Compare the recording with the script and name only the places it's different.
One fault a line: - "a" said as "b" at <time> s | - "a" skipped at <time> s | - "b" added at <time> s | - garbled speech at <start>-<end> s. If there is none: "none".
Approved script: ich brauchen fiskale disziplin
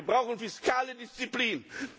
- "ich" said as "wir" at 0.0 s